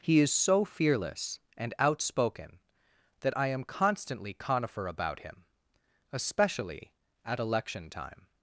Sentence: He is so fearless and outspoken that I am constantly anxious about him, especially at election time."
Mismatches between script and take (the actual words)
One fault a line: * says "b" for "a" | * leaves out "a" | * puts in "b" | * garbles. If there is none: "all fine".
* says "conifer" for "anxious"